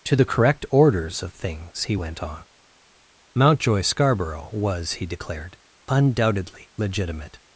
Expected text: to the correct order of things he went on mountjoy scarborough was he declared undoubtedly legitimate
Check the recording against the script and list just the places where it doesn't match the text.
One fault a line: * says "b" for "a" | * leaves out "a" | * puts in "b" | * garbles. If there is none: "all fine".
* says "orders" for "order"